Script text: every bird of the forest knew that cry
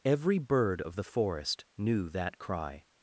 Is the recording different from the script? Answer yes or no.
no